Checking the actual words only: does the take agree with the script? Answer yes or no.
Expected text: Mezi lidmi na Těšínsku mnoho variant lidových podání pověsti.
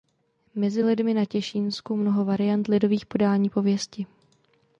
yes